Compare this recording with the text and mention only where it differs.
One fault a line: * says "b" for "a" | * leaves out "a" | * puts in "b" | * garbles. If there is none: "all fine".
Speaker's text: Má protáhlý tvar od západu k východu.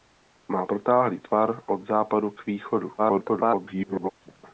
* garbles